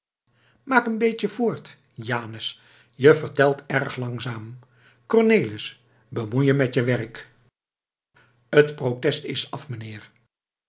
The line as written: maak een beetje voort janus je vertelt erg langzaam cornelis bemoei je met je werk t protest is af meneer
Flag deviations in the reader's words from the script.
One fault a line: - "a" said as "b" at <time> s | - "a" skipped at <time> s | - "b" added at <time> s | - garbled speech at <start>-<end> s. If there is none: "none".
none